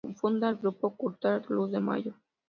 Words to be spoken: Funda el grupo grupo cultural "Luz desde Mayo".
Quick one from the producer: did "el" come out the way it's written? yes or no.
yes